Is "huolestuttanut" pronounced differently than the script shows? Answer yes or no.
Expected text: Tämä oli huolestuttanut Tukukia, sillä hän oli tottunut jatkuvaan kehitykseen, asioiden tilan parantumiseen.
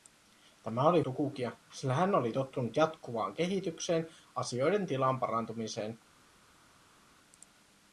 yes